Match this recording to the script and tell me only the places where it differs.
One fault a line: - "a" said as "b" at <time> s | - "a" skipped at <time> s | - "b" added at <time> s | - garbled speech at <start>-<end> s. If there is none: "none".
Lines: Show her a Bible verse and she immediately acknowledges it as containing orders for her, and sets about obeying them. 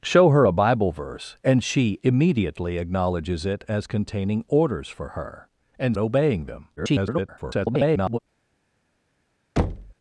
- "sets about" skipped at 6.0 s
- garbled speech at 6.8-8.2 s